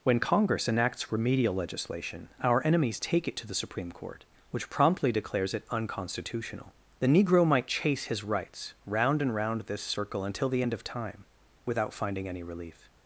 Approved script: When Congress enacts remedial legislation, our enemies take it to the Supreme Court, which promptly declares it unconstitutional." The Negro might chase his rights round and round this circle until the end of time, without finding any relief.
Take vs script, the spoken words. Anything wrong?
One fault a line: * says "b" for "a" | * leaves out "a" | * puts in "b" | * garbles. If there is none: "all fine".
all fine